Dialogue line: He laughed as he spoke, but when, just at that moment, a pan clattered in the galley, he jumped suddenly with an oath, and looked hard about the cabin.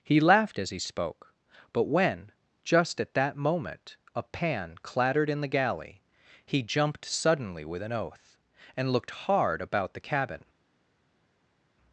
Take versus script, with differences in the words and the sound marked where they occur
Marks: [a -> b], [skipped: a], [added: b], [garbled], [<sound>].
He laughed as he spoke, but when, just at that moment, a pan clattered in the galley, he jumped suddenly with an oath, and looked hard about the cabin.